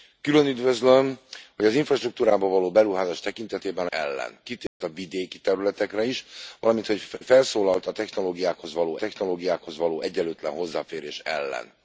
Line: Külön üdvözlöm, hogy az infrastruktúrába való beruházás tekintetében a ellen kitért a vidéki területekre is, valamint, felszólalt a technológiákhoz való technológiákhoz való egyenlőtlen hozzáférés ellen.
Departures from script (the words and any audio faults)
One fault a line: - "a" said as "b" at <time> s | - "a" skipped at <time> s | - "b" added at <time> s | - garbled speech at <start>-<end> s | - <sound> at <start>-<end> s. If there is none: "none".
- dropout at 4.7-4.8 s